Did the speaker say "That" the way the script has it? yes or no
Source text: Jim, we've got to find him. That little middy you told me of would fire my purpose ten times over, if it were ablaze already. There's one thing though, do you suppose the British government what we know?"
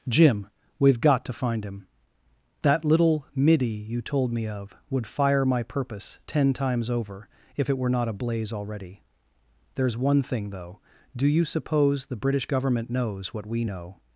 yes